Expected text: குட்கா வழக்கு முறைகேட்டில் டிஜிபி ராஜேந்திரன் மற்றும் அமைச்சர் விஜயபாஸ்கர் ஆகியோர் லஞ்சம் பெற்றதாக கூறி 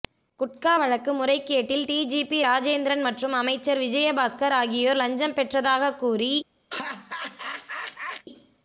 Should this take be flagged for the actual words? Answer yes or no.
no